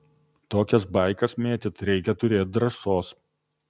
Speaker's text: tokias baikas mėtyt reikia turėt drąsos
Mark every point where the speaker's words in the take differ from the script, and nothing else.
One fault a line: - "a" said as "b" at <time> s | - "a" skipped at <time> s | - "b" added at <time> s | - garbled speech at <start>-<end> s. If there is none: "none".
none